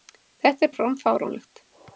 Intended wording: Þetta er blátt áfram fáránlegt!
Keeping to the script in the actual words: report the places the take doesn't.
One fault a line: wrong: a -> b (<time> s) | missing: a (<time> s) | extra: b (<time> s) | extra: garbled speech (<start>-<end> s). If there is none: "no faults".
missing: blátt (0.7 s)